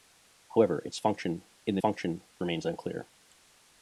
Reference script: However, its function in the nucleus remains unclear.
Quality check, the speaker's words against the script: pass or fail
fail